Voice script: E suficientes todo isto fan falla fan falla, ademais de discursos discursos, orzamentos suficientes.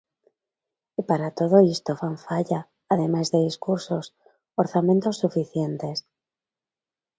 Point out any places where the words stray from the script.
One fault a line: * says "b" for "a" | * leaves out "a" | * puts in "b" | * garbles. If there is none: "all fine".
* says "para" for "suficientes"
* leaves out "fan falla"
* leaves out "discursos"